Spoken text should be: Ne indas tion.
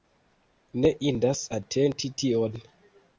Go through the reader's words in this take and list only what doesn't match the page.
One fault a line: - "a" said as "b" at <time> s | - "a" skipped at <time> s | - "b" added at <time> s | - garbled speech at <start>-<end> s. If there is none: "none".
- "atenti" added at 1.6 s